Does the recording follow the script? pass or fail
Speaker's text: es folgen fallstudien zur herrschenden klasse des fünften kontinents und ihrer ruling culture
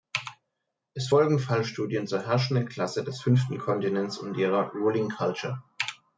pass